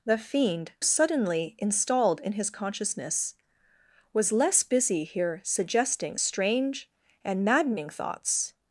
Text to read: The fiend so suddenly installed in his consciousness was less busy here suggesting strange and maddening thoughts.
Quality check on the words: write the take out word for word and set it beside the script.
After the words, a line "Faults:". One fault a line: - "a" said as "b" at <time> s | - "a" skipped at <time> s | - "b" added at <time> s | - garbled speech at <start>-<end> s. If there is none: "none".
The fiend suddenly installed in his consciousness was less busy here suggesting strange and maddening thoughts.
Faults:
- "so" skipped at 0.7 s